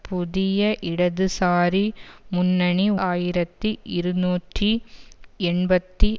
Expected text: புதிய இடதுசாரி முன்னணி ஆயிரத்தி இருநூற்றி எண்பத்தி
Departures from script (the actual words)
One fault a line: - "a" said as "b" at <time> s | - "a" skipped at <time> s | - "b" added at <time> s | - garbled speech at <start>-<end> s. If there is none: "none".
none